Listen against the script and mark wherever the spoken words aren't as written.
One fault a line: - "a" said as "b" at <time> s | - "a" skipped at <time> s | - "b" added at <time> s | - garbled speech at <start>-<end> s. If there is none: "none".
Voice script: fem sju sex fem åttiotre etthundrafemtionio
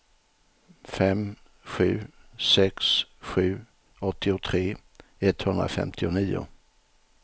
- "fem" said as "sju" at 3.2 s